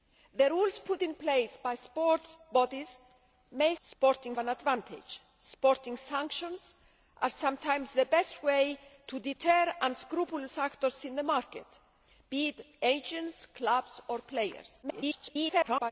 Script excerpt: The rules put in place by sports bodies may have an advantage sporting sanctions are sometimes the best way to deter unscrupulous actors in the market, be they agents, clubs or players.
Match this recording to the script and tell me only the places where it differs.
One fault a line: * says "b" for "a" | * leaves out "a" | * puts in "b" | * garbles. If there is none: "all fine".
* says "sporting" for "have"
* garbles